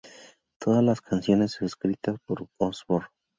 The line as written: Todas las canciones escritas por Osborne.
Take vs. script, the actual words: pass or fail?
pass